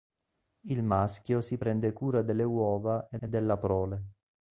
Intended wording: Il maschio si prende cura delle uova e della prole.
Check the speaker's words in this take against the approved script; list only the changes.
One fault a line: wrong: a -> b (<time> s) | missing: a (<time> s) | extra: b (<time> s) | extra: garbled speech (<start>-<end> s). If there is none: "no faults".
extra: e (3.2 s)